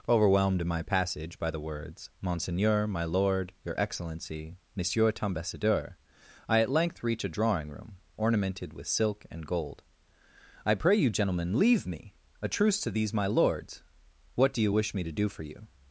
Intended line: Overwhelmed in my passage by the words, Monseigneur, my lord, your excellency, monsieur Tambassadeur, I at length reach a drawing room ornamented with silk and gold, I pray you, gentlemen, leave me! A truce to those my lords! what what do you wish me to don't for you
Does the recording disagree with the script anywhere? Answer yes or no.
yes